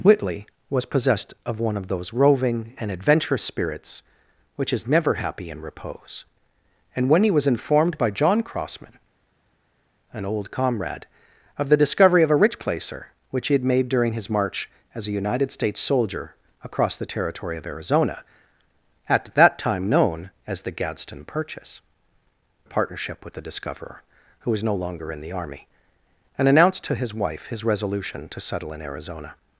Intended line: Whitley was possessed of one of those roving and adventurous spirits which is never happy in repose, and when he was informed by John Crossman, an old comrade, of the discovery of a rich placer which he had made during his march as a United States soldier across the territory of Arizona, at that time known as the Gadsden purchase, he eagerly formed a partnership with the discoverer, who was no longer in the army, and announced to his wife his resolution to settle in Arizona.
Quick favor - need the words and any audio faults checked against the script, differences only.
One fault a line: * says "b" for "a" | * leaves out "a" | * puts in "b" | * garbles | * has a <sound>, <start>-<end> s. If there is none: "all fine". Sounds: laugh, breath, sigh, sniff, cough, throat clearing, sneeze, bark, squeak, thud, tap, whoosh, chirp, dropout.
* leaves out "he eagerly formed"